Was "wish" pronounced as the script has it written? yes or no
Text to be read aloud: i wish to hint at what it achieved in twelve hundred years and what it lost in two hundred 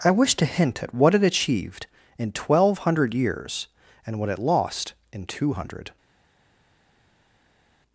yes